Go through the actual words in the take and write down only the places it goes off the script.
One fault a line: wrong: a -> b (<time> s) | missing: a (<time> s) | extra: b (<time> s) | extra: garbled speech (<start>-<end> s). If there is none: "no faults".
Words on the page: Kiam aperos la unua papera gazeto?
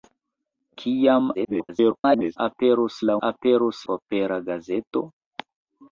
extra: garbled speech (1.3-2.4 s)
wrong: unua -> aperos (3.3 s)